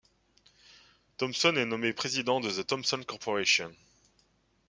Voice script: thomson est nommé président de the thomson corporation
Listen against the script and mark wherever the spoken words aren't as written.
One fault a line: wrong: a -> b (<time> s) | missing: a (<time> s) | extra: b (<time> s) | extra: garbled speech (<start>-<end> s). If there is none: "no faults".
no faults